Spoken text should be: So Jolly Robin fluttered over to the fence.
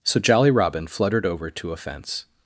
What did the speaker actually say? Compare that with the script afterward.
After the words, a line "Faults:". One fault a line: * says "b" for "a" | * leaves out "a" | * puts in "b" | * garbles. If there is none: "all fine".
So Jolly Robin fluttered over to a fence.
Faults:
* says "a" for "the"